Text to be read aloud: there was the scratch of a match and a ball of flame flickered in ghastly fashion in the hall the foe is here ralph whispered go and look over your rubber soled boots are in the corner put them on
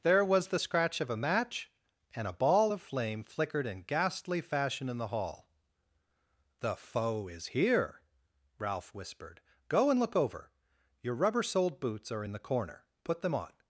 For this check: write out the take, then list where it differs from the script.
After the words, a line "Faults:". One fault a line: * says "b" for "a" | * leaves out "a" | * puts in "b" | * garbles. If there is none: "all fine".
there was the scratch of a match and a ball of flame flickered in ghastly fashion in the hall the foe is here ralph whispered go and look over your rubber soled boots are in the corner put them on
Faults:
all fine